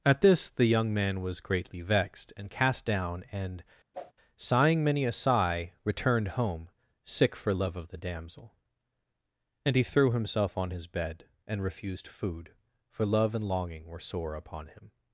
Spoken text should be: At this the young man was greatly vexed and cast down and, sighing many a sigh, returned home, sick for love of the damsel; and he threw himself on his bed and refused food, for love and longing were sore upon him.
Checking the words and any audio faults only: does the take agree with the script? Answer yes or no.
no